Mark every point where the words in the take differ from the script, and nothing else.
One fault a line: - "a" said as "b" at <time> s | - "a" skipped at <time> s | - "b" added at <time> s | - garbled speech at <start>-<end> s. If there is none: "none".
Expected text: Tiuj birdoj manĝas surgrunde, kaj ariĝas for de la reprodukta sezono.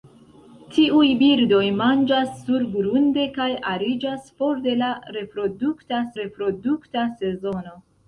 - "reprodukta" added at 6.2 s